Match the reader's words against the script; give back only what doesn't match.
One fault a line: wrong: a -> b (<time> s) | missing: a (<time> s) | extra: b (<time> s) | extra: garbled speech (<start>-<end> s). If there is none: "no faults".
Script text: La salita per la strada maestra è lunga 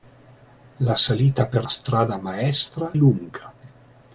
missing: la (1.7 s)
missing: è (2.9 s)